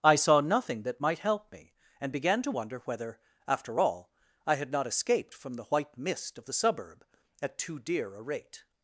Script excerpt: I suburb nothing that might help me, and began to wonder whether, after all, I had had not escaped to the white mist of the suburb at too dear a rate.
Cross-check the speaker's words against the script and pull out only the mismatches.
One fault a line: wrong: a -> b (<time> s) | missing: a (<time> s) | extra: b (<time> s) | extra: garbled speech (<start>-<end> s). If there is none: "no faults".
wrong: suburb -> saw (0.1 s)
missing: had (4.7 s)
wrong: to -> from (5.3 s)